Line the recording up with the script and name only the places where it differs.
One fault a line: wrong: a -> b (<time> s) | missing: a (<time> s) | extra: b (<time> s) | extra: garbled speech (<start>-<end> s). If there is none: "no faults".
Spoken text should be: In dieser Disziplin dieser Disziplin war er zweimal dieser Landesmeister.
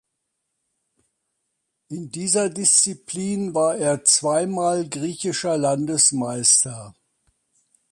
missing: dieser Disziplin (3.5 s)
wrong: dieser -> griechischer (4.9 s)